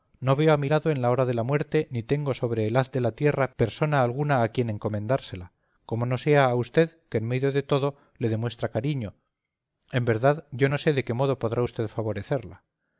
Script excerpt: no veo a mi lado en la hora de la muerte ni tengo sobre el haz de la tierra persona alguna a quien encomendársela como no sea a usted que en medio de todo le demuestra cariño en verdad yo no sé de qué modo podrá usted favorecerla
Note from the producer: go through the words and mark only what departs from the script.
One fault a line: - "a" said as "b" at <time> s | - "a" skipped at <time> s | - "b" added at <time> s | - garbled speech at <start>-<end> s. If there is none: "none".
none